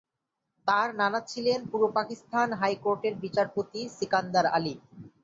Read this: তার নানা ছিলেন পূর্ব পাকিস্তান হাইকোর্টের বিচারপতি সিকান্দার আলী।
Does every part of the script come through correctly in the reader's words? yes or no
yes